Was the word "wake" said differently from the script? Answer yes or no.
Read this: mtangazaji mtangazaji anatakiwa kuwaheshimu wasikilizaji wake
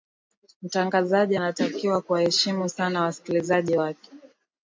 no